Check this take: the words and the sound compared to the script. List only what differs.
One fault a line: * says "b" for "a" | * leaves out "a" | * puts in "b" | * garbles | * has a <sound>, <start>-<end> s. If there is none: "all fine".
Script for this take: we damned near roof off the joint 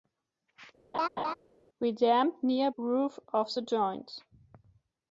* has a laugh, 0.9-1.3 s